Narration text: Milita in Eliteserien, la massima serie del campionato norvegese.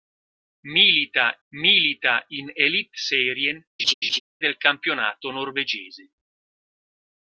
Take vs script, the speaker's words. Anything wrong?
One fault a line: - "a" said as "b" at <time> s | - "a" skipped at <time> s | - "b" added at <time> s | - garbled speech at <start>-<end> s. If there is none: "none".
- "milita" added at 1.5 s
- "la massima serie" skipped at 3.6 s